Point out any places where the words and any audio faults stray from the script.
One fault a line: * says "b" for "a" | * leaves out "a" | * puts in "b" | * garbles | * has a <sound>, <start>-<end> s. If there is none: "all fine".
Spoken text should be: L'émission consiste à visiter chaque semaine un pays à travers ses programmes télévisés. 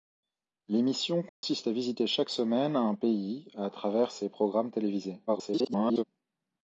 * has a dropout, 1.3-1.4 s
* garbles